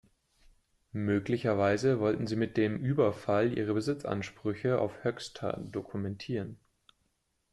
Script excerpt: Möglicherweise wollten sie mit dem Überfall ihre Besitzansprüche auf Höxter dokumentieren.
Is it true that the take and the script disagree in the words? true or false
false